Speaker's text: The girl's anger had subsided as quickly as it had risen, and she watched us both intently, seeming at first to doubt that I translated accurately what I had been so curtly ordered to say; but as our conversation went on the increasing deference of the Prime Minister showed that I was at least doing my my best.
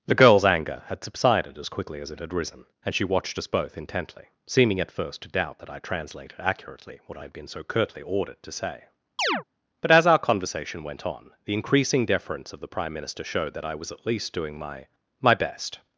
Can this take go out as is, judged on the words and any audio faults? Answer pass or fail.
fail